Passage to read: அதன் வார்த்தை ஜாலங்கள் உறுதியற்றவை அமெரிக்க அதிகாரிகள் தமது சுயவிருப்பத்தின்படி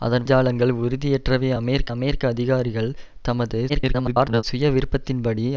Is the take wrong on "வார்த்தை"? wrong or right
wrong